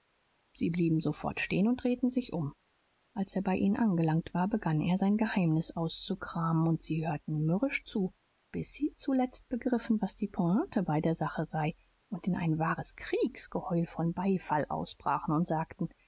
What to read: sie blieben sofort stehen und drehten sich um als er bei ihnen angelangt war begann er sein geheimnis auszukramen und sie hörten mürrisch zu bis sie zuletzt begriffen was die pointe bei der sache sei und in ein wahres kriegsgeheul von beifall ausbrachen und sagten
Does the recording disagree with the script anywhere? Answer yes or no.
no